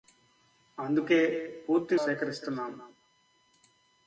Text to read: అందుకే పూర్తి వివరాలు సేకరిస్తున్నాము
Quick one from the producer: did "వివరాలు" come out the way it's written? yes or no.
no